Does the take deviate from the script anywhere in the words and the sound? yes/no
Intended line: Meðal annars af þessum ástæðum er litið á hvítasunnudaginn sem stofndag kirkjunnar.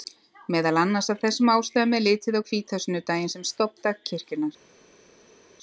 no